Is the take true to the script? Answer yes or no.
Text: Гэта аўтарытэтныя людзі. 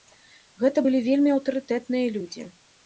no